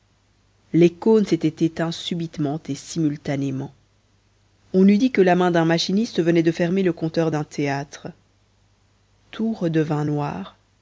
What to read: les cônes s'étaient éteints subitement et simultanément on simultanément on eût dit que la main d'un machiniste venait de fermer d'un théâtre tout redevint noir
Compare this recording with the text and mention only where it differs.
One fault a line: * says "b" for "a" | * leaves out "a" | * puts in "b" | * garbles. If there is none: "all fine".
* leaves out "simultanément on"
* puts in "le compteur"